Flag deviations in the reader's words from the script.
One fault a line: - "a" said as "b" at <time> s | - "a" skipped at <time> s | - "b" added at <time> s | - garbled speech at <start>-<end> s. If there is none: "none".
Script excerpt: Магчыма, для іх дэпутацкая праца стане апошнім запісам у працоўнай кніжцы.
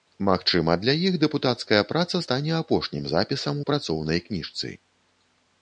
none